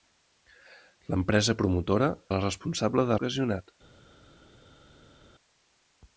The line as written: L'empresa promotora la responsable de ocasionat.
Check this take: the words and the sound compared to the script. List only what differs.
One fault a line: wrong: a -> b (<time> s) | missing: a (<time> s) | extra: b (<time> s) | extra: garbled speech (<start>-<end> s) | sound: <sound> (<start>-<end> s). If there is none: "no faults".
no faults